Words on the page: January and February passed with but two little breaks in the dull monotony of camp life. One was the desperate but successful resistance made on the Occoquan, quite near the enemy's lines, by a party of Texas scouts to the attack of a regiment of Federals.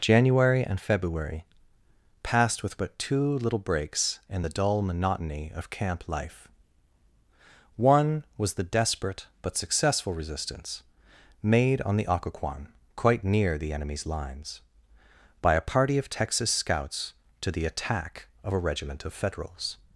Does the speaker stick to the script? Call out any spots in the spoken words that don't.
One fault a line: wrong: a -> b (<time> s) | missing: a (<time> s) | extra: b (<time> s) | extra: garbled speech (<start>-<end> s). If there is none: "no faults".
no faults